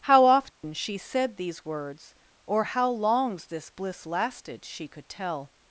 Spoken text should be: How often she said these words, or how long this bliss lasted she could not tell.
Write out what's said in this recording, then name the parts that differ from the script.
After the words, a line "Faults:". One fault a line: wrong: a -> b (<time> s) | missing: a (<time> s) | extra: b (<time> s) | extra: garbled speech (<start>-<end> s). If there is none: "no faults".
How often she said these words, or how longs this bliss lasted she could tell.
Faults:
wrong: long -> longs (2.9 s)
missing: not (5.1 s)